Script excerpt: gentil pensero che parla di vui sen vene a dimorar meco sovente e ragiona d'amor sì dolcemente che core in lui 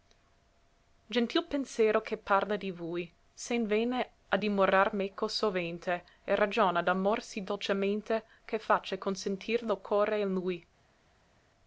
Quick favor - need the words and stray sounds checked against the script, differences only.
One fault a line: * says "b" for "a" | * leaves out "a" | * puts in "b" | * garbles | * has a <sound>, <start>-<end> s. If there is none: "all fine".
* puts in "face consentir lo"